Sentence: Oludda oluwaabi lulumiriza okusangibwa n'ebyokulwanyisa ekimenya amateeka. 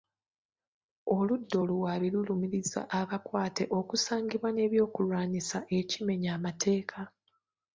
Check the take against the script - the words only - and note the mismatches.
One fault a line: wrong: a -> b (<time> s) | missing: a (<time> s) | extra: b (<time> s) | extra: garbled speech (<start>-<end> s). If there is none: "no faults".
extra: abakwate (3.0 s)